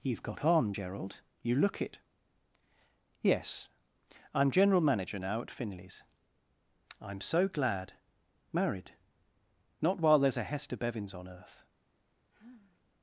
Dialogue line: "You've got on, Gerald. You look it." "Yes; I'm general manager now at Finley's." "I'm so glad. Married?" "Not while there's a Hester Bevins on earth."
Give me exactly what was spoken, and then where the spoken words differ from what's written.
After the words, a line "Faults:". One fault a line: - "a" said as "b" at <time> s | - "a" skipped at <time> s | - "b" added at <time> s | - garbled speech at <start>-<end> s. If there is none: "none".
"You've got on, Gerald. You look it." "Yes; I'm general manager now at Finley's." "I'm so glad. Married?" "Not while there's a Hester Bevins on earth."
Faults:
none